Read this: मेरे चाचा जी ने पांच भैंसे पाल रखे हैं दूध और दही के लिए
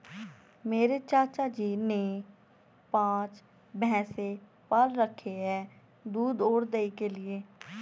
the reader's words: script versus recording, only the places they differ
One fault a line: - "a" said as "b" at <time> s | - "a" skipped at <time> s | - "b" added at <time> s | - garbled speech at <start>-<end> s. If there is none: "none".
none